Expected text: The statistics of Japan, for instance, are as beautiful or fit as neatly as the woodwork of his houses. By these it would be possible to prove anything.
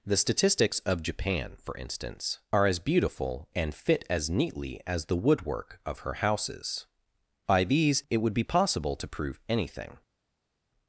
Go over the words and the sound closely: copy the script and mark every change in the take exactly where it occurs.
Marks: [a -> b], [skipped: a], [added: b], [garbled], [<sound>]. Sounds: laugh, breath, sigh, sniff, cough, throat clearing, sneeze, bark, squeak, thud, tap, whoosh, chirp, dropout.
The statistics of Japan, for instance, are as beautiful [or -> and] fit as neatly as the woodwork of [his -> her] houses. By these it would be possible to prove anything.